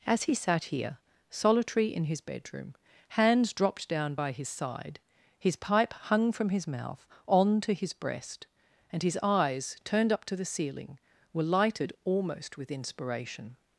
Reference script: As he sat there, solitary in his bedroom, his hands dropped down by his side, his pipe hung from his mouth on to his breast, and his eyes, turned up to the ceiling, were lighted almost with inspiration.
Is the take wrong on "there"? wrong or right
wrong